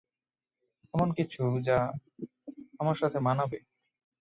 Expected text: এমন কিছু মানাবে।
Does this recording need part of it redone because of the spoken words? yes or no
yes